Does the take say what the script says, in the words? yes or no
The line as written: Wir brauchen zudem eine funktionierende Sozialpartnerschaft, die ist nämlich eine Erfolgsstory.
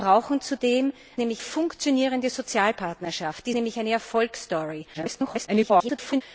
no